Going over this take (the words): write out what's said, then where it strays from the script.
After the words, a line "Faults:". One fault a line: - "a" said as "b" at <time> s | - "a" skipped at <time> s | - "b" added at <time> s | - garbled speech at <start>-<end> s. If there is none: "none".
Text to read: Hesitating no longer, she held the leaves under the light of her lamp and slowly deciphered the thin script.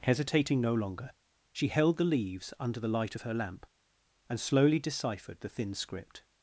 Hesitating no longer, she held the leaves under the light of her lamp and slowly deciphered the thin script.
Faults:
none